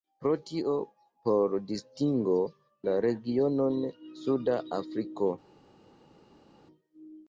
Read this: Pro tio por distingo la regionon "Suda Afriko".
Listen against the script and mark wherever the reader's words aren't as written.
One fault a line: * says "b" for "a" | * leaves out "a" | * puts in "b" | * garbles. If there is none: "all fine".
all fine